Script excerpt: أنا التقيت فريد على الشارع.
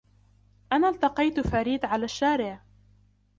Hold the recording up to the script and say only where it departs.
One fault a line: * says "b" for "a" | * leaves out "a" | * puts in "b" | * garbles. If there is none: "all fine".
all fine